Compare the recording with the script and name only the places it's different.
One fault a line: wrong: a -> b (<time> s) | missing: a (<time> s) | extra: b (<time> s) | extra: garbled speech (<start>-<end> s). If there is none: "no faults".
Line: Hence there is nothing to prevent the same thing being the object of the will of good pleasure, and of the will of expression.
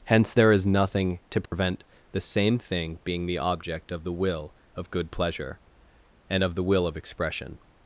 no faults